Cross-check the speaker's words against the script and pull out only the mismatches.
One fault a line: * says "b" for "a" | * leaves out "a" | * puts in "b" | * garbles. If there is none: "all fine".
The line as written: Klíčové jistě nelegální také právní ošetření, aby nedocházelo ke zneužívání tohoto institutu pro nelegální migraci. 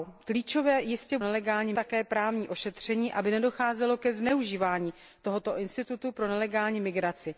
all fine